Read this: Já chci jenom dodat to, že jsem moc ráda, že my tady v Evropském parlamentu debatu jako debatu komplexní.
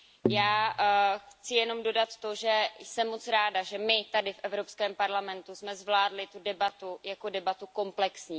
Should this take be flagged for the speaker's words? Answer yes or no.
yes